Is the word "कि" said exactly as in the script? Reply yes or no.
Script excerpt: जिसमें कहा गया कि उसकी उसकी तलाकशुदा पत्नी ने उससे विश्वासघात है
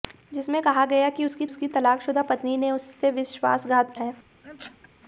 yes